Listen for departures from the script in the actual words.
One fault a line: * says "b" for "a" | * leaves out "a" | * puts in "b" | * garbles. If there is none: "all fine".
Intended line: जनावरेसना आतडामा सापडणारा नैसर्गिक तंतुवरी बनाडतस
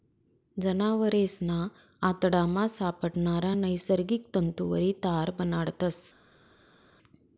* puts in "तार"